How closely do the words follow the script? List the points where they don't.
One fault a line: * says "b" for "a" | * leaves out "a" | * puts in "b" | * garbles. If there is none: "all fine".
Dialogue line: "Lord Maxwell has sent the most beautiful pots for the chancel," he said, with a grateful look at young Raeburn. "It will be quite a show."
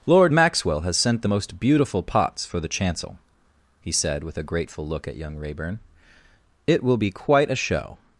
all fine